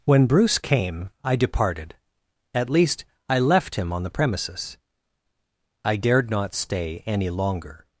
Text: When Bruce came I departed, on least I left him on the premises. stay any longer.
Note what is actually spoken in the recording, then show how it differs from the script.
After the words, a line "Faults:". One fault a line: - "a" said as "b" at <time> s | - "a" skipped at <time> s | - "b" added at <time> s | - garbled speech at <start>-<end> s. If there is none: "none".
When Bruce came I departed, at least I left him on the premises. I dared not stay any longer.
Faults:
- "on" said as "at" at 2.5 s
- "I dared not" added at 5.8 s